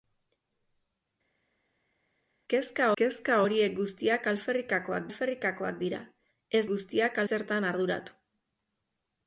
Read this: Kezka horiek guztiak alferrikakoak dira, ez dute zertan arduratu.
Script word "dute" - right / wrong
wrong